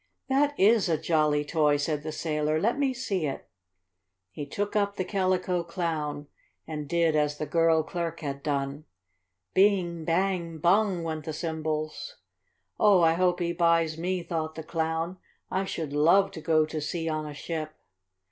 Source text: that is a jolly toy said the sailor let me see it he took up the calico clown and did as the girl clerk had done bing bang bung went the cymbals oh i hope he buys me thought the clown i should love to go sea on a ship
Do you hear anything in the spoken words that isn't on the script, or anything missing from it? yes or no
yes